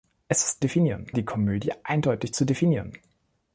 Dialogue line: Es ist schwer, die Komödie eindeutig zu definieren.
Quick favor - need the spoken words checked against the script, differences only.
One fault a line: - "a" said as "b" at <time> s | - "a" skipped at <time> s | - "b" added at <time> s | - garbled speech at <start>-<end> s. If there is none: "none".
- "schwer" said as "definieren" at 0.6 s